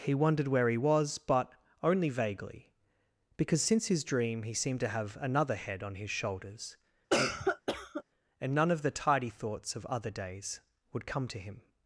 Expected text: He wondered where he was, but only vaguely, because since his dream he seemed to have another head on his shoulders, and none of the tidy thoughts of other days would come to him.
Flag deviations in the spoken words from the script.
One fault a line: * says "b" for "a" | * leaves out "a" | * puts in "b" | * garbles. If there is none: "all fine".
all fine